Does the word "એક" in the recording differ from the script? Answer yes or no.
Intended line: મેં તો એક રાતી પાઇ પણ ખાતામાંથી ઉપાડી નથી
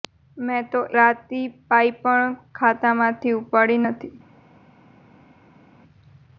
yes